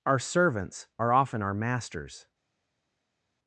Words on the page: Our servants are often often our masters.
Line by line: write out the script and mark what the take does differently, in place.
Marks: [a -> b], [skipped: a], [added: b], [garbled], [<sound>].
Our servants are often [skipped: often] our masters.